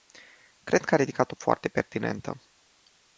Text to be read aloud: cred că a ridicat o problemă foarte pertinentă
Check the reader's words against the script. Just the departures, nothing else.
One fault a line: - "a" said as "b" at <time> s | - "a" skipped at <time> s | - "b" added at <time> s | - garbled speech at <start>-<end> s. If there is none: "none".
- "problemă" skipped at 1.4 s